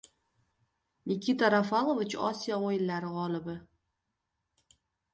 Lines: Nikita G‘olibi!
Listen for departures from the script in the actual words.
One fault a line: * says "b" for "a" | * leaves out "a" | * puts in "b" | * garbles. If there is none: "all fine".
* puts in "Rafalovich Osiyo o‘yinlari"